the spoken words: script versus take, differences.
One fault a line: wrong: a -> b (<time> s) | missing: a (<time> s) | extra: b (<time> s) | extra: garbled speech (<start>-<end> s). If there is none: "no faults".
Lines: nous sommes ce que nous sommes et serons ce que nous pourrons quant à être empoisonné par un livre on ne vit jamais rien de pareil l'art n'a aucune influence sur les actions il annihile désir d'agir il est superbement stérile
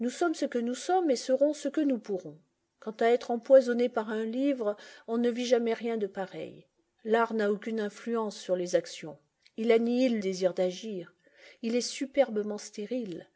no faults